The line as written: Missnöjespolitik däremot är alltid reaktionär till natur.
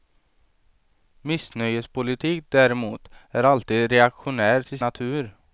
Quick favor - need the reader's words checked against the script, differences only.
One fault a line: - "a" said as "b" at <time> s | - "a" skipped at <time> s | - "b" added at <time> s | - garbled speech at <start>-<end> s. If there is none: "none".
none